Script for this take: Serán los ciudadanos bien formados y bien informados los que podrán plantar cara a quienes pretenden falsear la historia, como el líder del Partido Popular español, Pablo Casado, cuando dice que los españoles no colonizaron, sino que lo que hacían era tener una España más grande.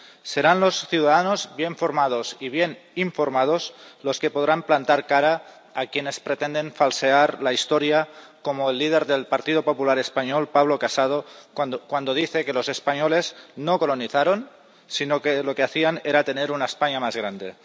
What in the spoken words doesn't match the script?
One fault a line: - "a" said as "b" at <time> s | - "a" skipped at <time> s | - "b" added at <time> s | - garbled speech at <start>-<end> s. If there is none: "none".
none